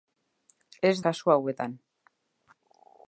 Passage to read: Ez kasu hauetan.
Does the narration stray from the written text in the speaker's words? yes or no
no